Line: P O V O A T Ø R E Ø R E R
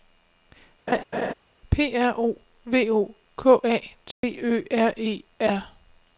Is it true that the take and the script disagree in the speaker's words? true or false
true